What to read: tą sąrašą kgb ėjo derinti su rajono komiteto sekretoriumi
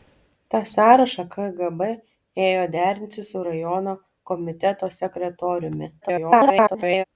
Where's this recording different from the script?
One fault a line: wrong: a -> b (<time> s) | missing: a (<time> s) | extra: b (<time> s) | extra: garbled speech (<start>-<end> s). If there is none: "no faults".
extra: garbled speech (6.0-7.0 s)